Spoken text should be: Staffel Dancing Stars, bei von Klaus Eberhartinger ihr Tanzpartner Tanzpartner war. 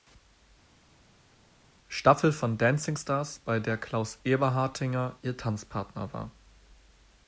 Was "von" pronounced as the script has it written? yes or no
no